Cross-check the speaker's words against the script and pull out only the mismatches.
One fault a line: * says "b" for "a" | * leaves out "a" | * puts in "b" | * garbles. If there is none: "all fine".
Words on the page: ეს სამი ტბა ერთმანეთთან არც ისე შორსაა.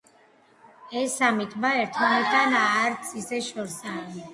all fine